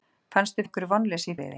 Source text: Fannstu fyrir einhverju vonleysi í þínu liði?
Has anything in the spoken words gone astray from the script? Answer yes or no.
yes